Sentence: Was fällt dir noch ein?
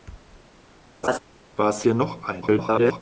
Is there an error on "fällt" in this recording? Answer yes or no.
yes